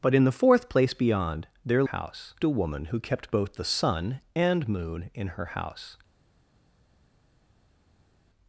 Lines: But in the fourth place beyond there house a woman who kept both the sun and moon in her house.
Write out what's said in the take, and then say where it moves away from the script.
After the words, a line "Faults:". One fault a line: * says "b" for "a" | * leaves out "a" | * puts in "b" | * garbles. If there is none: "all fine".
But in the fourth place beyond there house a woman who kept both the sun and moon in her house.
Faults:
all fine